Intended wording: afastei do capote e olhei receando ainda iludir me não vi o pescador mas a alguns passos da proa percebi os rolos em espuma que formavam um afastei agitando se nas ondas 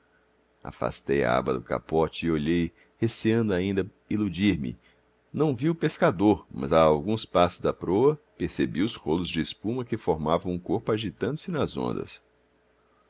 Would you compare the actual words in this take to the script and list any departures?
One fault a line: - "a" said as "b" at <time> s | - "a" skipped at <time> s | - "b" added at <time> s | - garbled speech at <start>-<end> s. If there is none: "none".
- "a aba" added at 1.2 s
- "em" said as "de" at 9.3 s
- "afastei" said as "corpo" at 10.6 s